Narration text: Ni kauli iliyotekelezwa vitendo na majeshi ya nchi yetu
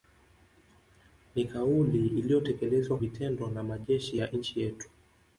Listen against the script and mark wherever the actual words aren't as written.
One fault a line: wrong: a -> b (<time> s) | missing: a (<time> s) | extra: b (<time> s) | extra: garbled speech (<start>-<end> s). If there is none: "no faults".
no faults